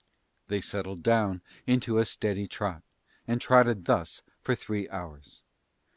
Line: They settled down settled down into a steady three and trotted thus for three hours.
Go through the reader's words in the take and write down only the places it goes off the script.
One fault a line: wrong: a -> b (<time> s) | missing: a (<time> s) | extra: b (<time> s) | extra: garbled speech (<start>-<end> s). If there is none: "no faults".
missing: settled down (1.4 s)
wrong: three -> trot (2.5 s)